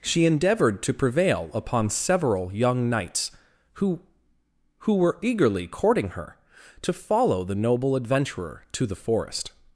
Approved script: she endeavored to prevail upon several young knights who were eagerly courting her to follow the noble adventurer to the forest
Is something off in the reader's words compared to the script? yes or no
yes